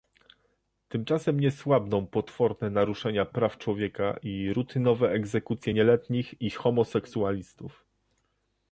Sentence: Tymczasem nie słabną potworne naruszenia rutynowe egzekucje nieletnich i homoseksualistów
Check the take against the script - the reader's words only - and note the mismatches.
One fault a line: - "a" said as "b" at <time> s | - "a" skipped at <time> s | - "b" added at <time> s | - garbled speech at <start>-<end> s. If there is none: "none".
- "praw człowieka i" added at 3.2 s